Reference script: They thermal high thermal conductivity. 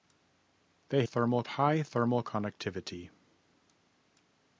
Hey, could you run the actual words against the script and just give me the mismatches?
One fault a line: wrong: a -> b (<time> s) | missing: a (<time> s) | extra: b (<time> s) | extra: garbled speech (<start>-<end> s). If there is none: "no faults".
no faults